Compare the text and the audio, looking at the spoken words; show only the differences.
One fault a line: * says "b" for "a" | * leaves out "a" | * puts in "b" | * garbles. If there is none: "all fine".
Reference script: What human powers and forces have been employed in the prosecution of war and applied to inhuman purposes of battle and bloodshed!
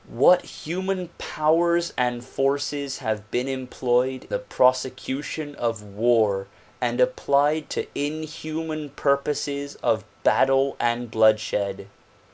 * leaves out "in"